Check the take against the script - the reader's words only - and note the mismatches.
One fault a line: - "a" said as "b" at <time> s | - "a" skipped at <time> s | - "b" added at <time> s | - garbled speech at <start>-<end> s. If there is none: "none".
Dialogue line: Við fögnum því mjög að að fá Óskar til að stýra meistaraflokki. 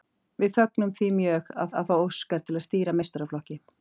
none